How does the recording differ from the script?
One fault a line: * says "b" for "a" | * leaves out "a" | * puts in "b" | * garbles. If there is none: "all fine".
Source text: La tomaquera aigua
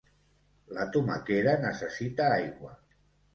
* puts in "necessita"